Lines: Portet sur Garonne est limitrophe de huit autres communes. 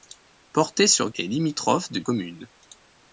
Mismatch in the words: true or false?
true